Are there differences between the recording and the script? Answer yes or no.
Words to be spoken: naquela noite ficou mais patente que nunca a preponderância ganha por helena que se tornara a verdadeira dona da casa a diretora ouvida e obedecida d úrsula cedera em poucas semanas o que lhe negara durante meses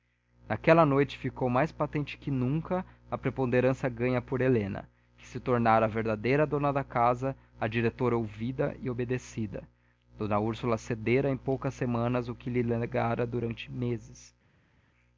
no